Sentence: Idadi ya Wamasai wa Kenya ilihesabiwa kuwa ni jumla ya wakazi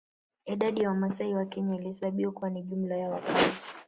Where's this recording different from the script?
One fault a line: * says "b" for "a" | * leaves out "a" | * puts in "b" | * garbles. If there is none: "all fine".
all fine